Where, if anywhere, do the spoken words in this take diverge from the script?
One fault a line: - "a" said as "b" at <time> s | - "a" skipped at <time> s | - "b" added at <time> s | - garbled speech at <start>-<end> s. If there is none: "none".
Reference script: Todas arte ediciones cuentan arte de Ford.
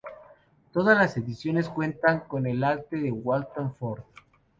- "arte" said as "las" at 1.0 s
- "con el" added at 2.2 s
- "Walton" added at 3.1 s